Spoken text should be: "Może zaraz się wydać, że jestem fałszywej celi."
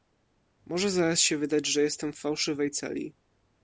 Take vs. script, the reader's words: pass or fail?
pass